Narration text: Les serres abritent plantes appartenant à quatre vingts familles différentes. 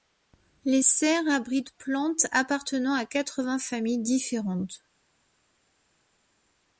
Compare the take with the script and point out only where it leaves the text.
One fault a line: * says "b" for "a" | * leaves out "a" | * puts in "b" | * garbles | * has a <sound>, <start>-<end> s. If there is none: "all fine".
all fine